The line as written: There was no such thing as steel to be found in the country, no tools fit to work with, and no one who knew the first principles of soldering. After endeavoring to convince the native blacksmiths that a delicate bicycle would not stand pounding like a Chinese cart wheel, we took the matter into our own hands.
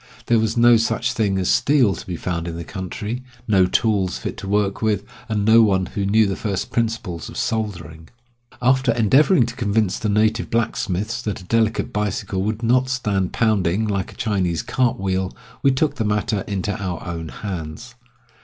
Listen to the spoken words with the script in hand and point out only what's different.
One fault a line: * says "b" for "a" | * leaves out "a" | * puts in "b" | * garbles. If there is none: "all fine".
all fine